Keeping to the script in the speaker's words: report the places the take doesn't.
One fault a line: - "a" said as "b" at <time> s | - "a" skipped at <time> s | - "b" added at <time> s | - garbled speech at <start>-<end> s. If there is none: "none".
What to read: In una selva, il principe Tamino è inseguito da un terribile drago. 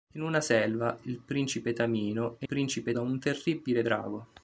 - "inseguito" said as "principe" at 2.4 s